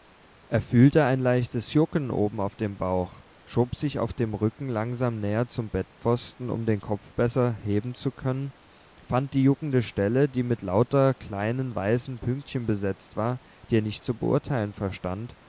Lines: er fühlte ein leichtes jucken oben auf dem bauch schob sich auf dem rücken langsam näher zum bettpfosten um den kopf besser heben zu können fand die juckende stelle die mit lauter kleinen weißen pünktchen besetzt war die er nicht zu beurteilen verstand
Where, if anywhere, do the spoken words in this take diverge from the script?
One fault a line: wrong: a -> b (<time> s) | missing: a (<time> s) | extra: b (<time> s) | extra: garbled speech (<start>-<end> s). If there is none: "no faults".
no faults